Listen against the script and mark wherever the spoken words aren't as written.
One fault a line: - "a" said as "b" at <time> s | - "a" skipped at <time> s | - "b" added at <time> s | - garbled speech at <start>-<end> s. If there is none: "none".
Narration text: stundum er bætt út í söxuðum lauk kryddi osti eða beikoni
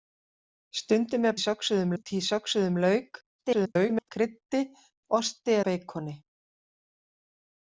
- "bætt" said as "söxuðum" at 1.4 s
- garbled speech at 3.4-4.1 s
- "eða" skipped at 5.6 s